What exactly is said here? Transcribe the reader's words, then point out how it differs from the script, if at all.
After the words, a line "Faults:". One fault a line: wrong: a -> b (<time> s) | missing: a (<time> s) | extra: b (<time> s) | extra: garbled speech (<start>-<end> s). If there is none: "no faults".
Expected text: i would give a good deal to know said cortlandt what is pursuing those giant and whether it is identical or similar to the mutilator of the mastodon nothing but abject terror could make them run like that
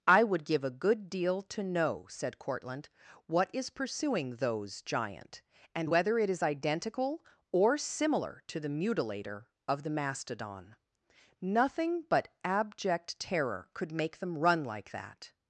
i would give a good deal to know said cortlandt what is pursuing those giant and whether it is identical or similar to the mutilator of the mastodon nothing but abject terror could make them run like that
Faults:
no faults